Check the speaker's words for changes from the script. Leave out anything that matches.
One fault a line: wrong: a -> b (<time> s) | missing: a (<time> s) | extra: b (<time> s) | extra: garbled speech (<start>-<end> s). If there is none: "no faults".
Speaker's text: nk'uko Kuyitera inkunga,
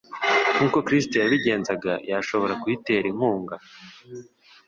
extra: Kristo yabigenzaga yashobora (0.9 s)